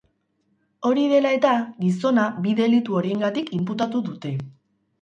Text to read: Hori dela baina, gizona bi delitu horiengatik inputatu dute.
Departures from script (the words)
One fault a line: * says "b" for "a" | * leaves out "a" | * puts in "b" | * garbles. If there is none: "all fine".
* says "eta" for "baina"